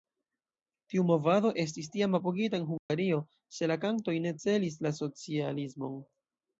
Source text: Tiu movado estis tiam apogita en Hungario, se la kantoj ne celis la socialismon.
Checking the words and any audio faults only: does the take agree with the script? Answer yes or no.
no